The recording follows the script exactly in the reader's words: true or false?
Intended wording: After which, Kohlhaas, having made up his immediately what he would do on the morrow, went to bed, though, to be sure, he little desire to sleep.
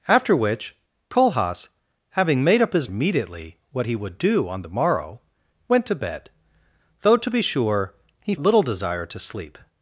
true